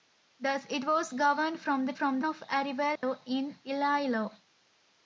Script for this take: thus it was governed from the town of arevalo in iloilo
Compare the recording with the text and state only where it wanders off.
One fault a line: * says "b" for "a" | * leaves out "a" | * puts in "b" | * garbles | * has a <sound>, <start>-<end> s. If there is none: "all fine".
* says "from" for "town"
* has a dropout, 3.0-3.0 s